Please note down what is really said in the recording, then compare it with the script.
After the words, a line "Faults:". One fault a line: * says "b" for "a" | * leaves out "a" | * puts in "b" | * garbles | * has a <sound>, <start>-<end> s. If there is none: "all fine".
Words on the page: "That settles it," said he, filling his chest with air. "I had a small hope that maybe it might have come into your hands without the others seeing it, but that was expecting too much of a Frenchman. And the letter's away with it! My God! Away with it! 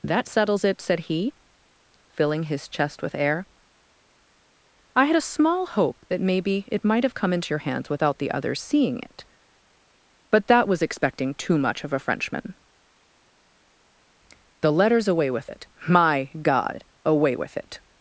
"That settles it," said he, filling his chest with air. "I had a small hope that maybe it might have come into your hands without the others seeing it, but that was expecting too much of a Frenchman. the letter's away with it! My God! Away with it!
Faults:
* leaves out "And"